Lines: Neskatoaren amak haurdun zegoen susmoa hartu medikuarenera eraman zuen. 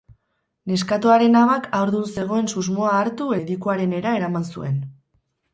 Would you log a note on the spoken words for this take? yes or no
no